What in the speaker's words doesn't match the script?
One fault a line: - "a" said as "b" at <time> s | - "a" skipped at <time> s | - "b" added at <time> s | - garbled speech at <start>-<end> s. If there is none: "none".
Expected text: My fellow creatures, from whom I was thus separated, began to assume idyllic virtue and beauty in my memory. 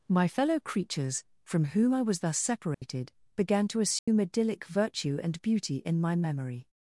none